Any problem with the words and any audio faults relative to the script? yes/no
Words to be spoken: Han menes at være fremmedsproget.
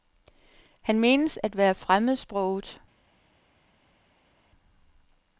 no